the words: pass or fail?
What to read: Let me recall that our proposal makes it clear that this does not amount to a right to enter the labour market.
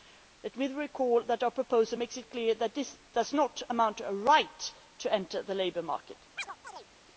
pass